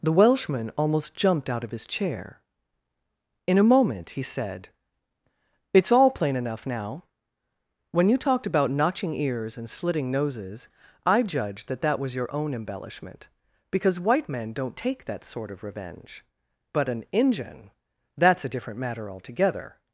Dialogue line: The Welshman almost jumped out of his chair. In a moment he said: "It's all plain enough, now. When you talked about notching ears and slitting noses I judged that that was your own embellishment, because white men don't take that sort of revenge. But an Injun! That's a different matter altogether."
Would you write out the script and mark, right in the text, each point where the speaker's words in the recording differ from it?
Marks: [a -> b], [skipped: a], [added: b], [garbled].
The Welshman almost jumped out of his chair. In a moment he said: "It's all plain enough, now. When you talked about notching ears and slitting noses I judged that that was your own embellishment, because white men don't take that sort of revenge. But an Injun! That's a different matter altogether."